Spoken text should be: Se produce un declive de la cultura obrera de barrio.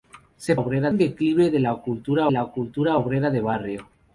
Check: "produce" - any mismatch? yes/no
yes